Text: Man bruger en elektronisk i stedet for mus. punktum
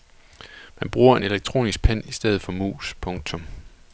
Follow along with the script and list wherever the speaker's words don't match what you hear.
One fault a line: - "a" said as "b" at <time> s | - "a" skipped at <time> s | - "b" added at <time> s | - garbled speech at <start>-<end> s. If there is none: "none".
- "pen" added at 1.8 s